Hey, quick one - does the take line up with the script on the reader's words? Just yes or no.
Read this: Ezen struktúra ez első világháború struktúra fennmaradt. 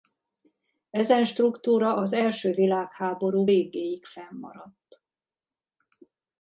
no